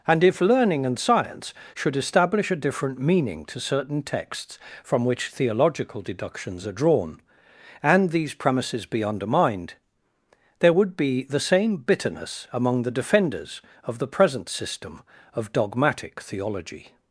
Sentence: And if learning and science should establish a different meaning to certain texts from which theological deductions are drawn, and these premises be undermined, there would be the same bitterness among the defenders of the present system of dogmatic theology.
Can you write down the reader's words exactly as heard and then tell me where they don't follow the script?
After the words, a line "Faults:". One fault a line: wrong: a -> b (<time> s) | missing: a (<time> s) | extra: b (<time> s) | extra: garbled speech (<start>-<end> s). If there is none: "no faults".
And if learning and science should establish a different meaning to certain texts from which theological deductions are drawn, and these premises be undermined, there would be the same bitterness among the defenders of the present system of dogmatic theology.
Faults:
no faults